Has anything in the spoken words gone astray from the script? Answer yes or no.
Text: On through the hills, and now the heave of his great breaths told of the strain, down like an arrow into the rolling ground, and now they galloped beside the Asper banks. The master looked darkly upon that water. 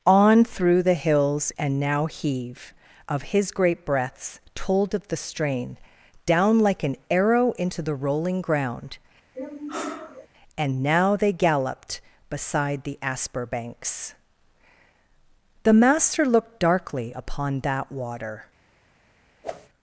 yes